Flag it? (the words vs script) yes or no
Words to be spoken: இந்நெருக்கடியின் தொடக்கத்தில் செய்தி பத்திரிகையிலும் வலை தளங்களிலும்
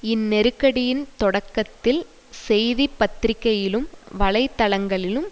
no